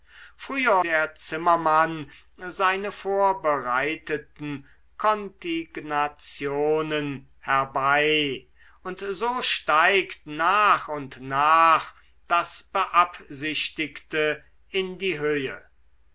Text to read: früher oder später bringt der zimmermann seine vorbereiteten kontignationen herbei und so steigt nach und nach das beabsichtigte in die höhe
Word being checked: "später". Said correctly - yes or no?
no